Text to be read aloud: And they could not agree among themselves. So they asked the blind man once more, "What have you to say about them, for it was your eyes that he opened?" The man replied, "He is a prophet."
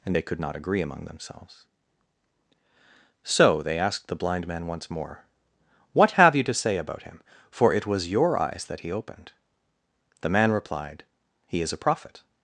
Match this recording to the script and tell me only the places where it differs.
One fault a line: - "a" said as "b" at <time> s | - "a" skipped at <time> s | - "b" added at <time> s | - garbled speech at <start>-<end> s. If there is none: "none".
- "them" said as "him" at 7.0 s